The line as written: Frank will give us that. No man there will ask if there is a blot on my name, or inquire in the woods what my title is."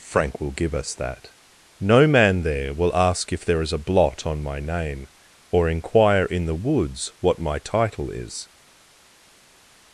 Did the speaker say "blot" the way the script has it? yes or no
yes